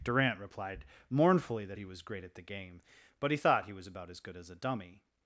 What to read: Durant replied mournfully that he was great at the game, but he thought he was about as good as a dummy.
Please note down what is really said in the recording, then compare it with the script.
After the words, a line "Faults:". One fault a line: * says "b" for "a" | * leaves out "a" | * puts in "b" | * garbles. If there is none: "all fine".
Durant replied mournfully that he was great at the game, but he thought he was about as good as a dummy.
Faults:
all fine